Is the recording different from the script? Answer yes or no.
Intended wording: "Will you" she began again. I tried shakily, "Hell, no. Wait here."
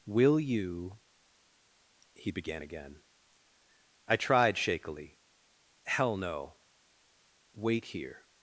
yes